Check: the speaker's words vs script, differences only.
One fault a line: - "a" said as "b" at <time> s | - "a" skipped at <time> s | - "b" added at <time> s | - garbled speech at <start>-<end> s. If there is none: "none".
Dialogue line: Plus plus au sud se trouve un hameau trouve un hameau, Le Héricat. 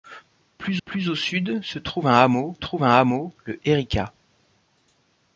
none